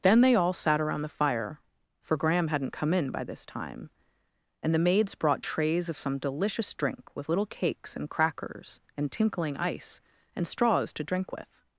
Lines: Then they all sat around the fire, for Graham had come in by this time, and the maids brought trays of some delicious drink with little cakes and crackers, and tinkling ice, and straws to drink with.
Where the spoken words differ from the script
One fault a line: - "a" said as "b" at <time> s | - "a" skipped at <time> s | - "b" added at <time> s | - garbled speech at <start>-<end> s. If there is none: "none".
- "had" said as "hadn't" at 2.5 s